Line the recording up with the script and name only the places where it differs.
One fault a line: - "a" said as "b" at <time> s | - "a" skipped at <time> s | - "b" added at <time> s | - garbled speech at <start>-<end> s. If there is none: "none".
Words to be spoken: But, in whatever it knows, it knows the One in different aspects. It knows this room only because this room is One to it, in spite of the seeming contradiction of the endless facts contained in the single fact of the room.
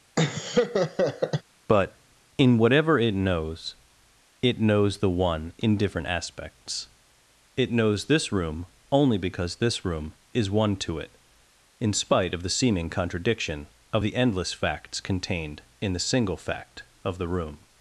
none